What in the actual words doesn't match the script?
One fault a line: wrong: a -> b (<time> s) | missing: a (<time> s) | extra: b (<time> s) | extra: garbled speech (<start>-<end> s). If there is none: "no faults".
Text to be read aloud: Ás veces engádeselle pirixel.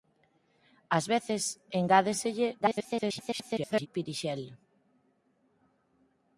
extra: garbled speech (2.6-3.9 s)